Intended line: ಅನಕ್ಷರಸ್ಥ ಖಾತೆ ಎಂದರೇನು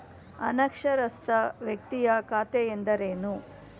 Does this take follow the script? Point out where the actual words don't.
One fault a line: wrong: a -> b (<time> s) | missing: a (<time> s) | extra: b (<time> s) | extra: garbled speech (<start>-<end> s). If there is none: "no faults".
extra: ವ್ಯಕ್ತಿಯ (1.6 s)